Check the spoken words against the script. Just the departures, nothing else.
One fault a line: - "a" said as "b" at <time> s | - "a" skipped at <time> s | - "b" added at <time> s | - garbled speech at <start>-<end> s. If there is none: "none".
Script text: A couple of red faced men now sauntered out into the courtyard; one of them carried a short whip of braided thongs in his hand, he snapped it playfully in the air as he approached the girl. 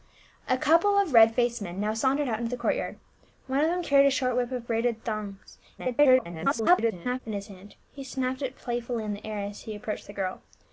- garbled speech at 5.8-7.2 s